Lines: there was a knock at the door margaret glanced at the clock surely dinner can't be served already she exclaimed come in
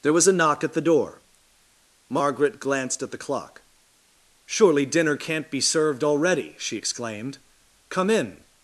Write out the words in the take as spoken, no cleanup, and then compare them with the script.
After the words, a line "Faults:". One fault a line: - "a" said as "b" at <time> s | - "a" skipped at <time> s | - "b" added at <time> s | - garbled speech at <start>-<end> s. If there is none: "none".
there was a knock at the door margaret glanced at the clock surely dinner can't be served already she exclaimed come in
Faults:
none